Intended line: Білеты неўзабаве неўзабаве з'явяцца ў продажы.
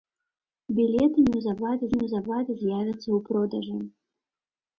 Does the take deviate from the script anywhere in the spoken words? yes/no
no